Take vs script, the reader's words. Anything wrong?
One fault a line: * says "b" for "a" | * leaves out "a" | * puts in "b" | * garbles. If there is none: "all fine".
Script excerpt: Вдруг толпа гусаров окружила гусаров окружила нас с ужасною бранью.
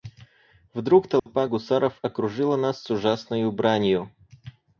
* leaves out "гусаров окружила"